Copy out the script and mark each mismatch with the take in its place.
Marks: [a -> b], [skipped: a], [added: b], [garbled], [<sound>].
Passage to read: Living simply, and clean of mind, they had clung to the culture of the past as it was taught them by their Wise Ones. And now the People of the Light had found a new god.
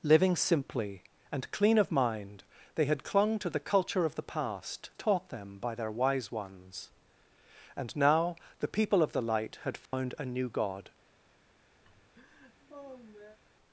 Living simply, and clean of mind, they had clung to the culture of the past [skipped: as it was] taught them by their Wise Ones. And now the People of the Light had found [dropout] a new god. [laugh]